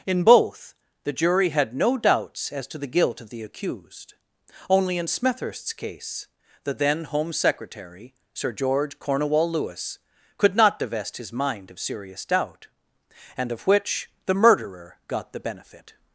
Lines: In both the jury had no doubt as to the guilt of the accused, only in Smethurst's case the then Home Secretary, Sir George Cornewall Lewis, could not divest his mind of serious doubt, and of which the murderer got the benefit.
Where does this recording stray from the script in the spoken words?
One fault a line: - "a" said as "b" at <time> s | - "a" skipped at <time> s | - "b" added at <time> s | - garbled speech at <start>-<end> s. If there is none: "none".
- "doubt" said as "doubts" at 2.0 s